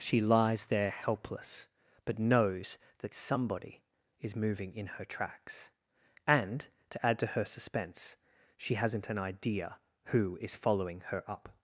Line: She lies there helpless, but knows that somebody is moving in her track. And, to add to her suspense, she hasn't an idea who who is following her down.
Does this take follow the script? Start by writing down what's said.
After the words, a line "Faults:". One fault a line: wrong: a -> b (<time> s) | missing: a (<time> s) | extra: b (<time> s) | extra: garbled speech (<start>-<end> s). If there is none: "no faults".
She lies there helpless, but knows that somebody is moving in her tracks. And, to add to her suspense, she hasn't an idea who is following her up.
Faults:
wrong: track -> tracks (5.0 s)
missing: who (10.4 s)
wrong: down -> up (11.3 s)